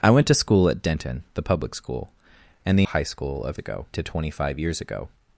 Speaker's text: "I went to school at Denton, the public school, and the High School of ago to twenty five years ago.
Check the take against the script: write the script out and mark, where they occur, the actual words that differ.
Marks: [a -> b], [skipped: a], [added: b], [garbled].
"I went to school at Denton, the public school, and the High School of ago to twenty five years ago.